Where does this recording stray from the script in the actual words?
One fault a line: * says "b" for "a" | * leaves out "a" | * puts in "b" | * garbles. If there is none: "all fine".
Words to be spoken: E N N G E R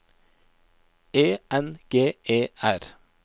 * leaves out "N"